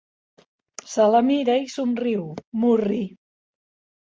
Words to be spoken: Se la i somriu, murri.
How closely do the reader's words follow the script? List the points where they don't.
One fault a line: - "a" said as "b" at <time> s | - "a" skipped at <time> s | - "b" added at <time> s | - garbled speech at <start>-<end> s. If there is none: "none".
- "mira" added at 1.3 s